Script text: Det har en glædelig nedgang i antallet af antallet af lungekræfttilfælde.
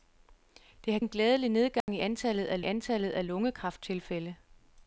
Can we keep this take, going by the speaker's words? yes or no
yes